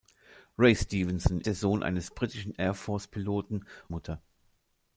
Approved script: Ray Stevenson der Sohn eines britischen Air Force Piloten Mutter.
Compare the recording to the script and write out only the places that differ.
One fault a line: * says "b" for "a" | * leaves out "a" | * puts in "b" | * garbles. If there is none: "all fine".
all fine